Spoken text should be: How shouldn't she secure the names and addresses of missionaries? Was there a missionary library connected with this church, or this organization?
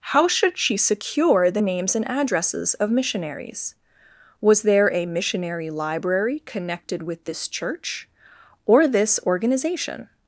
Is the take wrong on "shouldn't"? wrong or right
wrong